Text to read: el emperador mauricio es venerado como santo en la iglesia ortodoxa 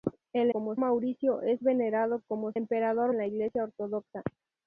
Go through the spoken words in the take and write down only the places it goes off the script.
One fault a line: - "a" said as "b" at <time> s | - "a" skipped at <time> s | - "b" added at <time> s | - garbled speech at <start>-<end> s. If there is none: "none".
- "emperador" said as "como" at 0.5 s
- "santo" said as "emperador" at 2.5 s